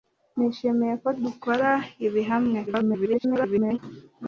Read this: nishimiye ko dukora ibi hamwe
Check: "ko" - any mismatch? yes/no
no